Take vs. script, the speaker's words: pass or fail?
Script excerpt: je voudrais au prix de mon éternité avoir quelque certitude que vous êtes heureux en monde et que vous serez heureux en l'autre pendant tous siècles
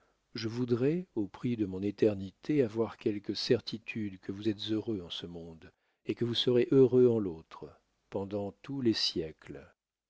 fail